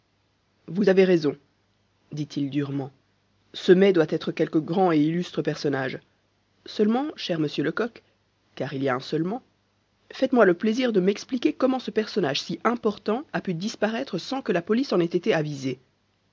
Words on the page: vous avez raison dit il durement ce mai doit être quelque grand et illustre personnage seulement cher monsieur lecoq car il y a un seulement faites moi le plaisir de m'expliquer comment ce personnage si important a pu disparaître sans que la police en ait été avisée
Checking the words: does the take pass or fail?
pass